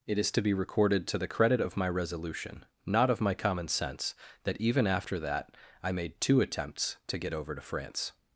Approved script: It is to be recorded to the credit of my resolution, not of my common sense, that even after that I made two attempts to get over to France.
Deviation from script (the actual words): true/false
false